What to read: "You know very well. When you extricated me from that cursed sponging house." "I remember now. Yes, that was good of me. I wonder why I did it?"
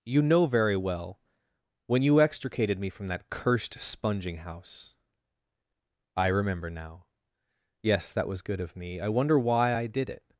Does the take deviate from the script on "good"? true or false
false